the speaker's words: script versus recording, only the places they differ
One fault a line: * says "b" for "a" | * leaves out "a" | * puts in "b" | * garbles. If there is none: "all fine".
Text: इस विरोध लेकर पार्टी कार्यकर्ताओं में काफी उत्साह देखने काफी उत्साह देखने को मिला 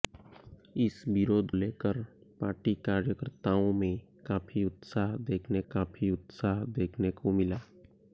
all fine